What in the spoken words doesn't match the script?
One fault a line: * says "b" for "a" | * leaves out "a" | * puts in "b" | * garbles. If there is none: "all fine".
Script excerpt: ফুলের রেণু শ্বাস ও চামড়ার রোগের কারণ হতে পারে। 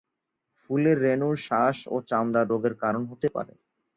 all fine